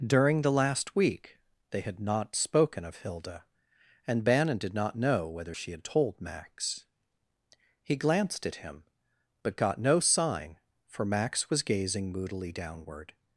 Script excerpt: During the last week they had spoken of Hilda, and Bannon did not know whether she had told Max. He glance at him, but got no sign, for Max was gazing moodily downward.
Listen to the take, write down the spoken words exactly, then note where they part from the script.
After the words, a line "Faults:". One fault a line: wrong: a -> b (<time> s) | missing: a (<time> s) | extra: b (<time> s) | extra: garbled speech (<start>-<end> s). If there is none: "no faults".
During the last week they had not spoken of Hilda, and Bannon did not know whether she had told Max. He glanced at him, but got no sign, for Max was gazing moodily downward.
Faults:
extra: not (2.0 s)
wrong: glance -> glanced (8.0 s)